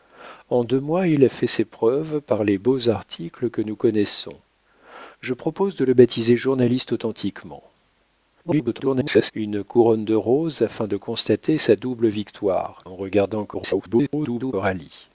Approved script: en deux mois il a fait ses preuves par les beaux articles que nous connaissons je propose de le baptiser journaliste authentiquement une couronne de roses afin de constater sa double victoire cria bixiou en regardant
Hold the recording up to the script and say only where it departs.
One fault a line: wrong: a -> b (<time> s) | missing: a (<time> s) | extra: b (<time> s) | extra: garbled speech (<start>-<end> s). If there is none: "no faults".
extra: garbled speech (8.4-9.3 s)
missing: cria bixiou (12.8 s)
extra: garbled speech (13.5-14.5 s)